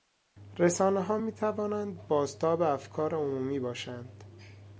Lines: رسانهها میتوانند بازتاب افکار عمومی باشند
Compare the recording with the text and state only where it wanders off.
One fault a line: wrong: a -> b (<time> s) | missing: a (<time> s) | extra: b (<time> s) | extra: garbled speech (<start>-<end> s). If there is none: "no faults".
no faults